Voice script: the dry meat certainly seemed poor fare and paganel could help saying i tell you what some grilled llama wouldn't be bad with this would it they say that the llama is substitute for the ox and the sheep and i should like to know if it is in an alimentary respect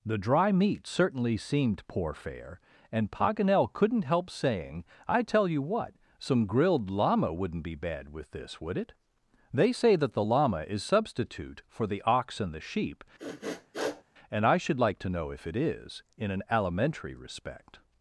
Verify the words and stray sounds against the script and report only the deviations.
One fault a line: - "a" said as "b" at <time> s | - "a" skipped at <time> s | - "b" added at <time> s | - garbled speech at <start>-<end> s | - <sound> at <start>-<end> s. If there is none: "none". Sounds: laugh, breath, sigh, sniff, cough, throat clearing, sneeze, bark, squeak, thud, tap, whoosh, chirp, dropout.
- "could" said as "couldn't" at 3.7 s
- sniff at 13.2-14.0 s